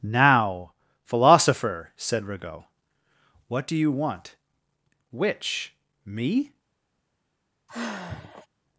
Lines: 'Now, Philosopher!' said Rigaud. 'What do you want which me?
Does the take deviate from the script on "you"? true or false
false